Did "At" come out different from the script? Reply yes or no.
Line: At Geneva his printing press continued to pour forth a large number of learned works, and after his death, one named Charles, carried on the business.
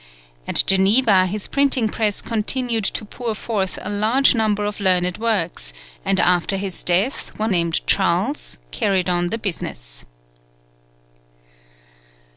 no